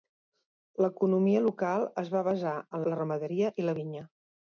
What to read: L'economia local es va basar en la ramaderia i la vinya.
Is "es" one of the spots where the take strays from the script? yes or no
no